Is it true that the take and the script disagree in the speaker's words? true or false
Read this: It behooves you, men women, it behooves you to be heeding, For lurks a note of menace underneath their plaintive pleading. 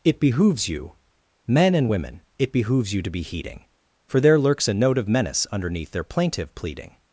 true